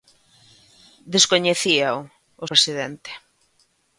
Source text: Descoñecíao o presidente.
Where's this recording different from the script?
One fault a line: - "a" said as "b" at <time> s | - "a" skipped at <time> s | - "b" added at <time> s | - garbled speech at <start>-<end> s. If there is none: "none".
none